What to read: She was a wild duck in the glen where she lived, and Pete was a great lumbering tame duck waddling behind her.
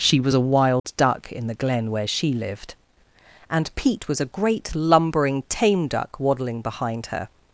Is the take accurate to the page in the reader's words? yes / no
yes